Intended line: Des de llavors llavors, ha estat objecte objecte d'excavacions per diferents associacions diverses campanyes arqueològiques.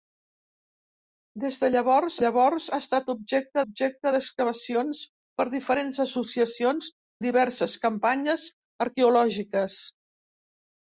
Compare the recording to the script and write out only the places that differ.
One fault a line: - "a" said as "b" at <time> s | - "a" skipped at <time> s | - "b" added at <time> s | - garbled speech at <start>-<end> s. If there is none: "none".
none